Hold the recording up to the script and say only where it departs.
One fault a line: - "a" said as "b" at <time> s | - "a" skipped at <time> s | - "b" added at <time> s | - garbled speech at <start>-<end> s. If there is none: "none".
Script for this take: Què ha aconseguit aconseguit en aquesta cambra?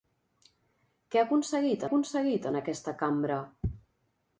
none